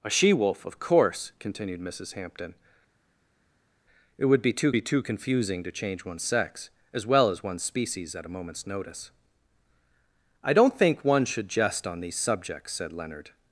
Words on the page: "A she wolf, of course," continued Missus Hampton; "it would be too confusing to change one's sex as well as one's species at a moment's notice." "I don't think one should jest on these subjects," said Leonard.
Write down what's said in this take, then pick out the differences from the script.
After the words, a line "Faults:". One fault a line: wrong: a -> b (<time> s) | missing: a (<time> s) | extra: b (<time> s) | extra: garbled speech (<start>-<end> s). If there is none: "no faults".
"A she wolf, of course," continued Missus Hampton; "it would be too be too confusing to change one's sex as well as one's species at a moment's notice." "I don't think one should jest on these subjects," said Leonard.
Faults:
extra: be too (4.7 s)